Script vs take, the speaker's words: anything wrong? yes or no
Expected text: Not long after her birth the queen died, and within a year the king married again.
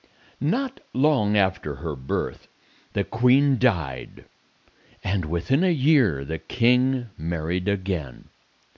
no